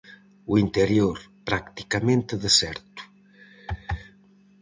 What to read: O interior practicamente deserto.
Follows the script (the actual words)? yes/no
yes